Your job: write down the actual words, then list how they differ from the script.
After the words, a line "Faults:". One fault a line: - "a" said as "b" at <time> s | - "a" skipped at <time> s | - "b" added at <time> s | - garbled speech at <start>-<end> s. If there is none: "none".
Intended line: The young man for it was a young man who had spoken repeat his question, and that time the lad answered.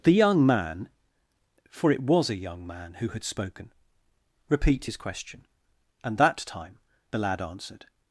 The young man for it was a young man who had spoken repeat his question, and that time the lad answered.
Faults:
none